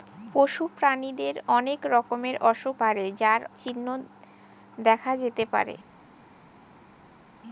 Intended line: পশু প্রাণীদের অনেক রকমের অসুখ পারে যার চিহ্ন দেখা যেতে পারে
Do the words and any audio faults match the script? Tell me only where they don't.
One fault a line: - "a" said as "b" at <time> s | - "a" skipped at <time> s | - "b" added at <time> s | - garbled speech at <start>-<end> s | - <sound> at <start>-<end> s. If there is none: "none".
none